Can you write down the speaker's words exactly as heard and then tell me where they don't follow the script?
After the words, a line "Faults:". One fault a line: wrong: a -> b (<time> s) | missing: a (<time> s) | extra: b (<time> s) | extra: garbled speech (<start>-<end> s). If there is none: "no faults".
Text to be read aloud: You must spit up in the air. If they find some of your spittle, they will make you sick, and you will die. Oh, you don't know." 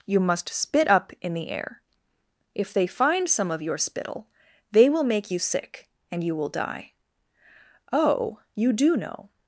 You must spit up in the air. If they find some of your spittle, they will make you sick, and you will die. Oh, you do know."
Faults:
wrong: don't -> do (8.7 s)